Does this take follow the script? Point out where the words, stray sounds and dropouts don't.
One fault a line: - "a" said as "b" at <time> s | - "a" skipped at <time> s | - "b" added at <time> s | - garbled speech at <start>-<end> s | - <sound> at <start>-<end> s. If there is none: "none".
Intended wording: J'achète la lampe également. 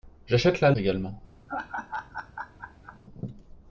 - "lampe" skipped at 0.7 s
- laugh at 1.5-3.0 s